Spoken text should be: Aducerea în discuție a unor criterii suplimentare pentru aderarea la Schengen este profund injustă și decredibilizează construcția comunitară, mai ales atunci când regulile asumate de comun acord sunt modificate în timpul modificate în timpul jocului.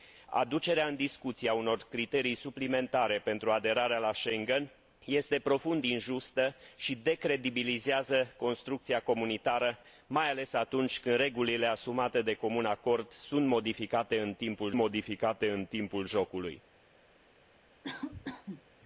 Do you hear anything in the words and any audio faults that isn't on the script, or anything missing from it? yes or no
yes